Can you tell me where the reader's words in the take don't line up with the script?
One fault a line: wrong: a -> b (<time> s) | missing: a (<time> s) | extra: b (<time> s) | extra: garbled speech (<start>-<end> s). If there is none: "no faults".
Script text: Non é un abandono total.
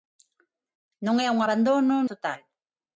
no faults